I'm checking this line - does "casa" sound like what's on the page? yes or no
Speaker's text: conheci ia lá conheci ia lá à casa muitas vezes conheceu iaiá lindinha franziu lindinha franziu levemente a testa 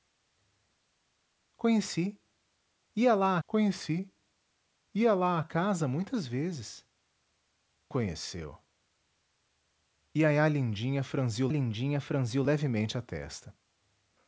yes